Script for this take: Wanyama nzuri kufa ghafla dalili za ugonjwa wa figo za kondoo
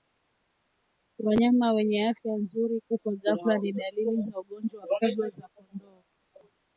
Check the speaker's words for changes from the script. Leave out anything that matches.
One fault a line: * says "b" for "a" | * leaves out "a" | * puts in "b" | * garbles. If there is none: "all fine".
* puts in "wenye afya"
* puts in "ni"